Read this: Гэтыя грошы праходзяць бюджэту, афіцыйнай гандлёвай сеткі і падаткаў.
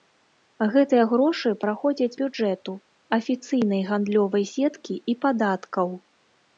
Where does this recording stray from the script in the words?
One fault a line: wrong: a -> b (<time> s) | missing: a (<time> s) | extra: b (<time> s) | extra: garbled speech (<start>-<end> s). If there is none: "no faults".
no faults